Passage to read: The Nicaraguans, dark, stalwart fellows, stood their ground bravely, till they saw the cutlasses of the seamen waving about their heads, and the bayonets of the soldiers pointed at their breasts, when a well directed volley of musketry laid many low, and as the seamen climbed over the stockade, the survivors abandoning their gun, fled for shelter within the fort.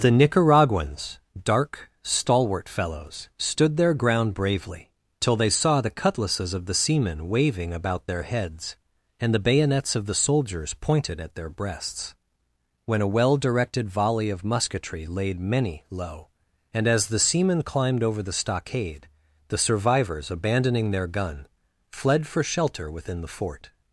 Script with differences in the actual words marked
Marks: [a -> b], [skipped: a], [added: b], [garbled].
The Nicaraguans, dark, stalwart fellows, stood their ground bravely, till they saw the cutlasses of the seamen waving about their heads, and the bayonets of the soldiers pointed at their breasts, when a well directed volley of musketry laid many low, and as the seamen climbed over the stockade, the survivors abandoning their gun, fled for shelter within the fort.